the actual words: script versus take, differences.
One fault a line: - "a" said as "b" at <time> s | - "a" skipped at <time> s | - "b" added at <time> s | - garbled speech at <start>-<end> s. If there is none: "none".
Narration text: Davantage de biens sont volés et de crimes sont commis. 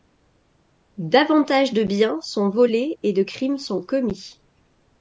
none